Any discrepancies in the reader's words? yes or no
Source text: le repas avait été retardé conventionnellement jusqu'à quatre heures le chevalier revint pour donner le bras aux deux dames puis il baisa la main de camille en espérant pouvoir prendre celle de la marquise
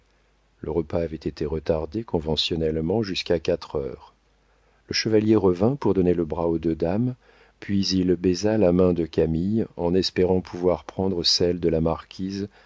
no